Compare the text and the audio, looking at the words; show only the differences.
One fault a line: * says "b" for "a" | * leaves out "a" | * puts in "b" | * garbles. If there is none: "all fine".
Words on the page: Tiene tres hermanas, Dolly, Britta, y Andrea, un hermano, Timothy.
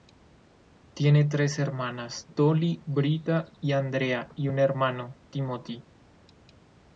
* puts in "y"